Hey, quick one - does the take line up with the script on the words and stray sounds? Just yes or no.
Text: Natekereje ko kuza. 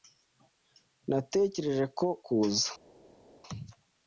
yes